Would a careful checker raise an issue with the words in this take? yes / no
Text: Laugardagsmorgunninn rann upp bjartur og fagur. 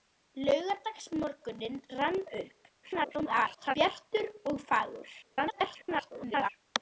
yes